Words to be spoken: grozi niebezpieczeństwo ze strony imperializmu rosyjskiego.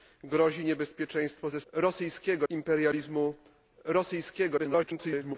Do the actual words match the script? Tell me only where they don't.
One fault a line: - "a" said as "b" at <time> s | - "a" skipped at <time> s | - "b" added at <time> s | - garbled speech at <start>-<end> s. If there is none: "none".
- "strony" said as "rosyjskiego" at 1.7 s
- garbled speech at 4.6-5.4 s